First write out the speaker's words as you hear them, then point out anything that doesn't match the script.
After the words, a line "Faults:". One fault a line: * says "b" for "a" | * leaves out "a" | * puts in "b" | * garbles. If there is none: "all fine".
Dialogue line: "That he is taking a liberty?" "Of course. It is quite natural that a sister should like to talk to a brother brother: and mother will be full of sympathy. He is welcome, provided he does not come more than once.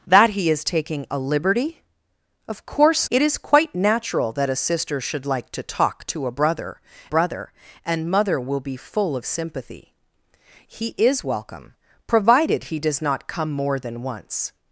"That he is taking a liberty?" "Of course. It is quite natural that a sister should like to talk to a brother brother: and mother will be full of sympathy. He is welcome, provided he does not come more than once.
Faults:
all fine